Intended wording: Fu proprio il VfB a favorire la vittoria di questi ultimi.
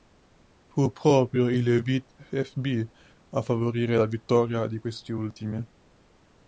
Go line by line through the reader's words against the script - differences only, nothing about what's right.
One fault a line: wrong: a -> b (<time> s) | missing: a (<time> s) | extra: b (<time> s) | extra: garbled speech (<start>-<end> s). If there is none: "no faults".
no faults